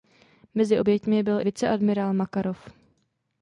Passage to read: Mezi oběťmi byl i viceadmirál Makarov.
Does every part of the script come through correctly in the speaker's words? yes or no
no